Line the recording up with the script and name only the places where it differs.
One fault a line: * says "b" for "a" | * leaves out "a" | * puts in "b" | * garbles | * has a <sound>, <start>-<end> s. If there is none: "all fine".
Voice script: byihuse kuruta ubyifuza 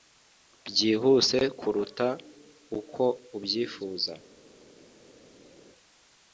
* puts in "uko"